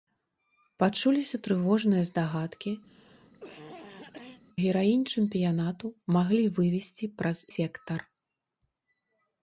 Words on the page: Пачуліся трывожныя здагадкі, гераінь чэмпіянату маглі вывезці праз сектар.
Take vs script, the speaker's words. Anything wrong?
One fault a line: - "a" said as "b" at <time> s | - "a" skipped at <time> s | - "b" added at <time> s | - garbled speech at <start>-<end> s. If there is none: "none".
none